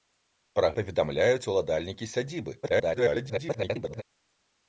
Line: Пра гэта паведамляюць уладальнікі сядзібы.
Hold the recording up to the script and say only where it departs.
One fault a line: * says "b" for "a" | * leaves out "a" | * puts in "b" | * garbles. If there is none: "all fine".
* leaves out "гэта"
* garbles